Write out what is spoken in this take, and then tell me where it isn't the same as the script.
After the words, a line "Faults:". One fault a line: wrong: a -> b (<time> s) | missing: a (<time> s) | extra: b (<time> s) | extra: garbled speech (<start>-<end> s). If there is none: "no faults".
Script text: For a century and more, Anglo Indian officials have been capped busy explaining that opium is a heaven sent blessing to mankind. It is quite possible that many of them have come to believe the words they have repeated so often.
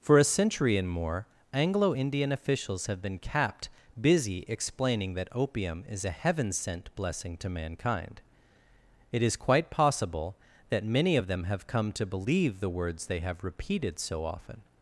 For a century and more, Anglo Indian officials have been capped busy explaining that opium is a heaven sent blessing to mankind. It is quite possible that many of them have come to believe the words they have repeated so often.
Faults:
no faults